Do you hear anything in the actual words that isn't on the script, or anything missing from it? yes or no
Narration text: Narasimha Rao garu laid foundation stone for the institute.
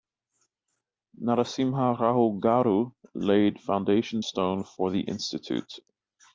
no